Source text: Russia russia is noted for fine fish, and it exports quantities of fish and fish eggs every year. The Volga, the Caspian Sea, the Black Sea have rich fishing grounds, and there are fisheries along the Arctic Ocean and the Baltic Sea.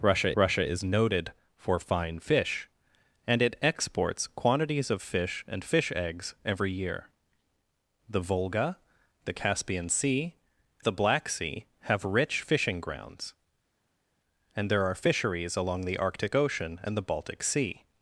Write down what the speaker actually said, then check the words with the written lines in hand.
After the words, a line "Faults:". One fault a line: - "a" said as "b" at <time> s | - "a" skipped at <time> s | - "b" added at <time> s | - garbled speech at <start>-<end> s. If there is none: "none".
Russia russia is noted for fine fish, and it exports quantities of fish and fish eggs every year. The Volga, the Caspian Sea, the Black Sea have rich fishing grounds, and there are fisheries along the Arctic Ocean and the Baltic Sea.
Faults:
none